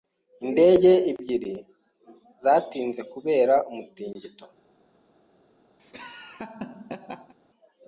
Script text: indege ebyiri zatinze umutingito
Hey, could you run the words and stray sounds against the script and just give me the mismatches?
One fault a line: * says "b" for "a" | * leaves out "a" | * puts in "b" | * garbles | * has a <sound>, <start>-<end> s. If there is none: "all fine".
* puts in "kubera"
* has a laugh, 5.8-7.3 s